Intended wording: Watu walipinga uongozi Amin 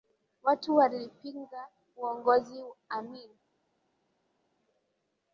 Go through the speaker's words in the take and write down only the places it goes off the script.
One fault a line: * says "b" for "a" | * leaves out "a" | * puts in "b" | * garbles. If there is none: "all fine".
all fine